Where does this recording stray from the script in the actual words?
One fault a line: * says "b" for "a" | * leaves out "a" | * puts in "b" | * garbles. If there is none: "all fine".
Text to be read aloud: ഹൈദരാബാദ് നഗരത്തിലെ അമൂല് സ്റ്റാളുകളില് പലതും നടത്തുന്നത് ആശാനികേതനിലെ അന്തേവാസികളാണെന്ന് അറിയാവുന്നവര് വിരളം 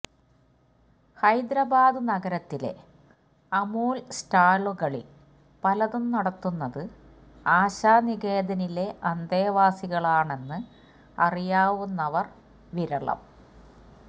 all fine